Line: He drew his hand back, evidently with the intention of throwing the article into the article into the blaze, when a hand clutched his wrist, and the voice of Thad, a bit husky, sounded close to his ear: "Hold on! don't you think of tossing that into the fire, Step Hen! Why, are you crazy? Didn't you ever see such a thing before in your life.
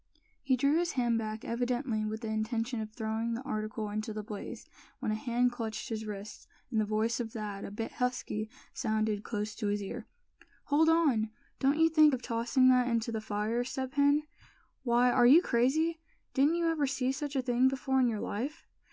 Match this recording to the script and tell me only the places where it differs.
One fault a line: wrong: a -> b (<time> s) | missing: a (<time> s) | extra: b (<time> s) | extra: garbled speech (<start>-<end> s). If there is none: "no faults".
missing: article into the (4.2 s)